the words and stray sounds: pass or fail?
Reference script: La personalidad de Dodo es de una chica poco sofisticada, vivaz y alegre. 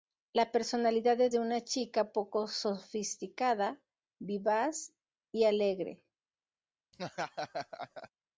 fail